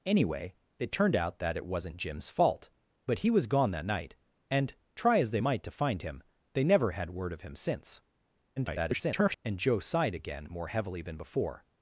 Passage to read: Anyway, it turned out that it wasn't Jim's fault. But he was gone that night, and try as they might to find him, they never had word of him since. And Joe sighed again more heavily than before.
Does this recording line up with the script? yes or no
no